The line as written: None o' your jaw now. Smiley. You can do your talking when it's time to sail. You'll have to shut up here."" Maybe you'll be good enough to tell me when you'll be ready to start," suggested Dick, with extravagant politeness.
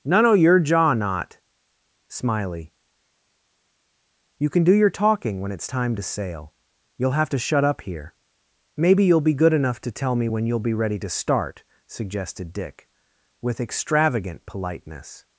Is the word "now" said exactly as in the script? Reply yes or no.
no